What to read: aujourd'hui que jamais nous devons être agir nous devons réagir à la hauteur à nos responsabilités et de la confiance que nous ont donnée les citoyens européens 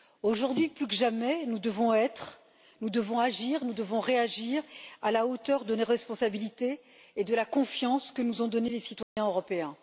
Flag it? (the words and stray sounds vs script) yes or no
yes